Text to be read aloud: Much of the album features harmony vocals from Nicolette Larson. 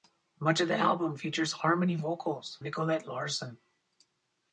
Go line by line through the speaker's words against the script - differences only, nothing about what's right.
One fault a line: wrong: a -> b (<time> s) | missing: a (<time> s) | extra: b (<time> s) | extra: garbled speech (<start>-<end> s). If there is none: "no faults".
missing: from (2.6 s)